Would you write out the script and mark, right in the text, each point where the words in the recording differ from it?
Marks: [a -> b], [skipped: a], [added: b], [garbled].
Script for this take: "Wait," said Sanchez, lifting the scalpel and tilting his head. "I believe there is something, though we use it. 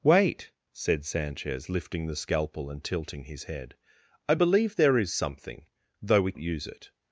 "Wait," said Sanchez, lifting the scalpel and tilting his head. "I believe there is something, though we use it.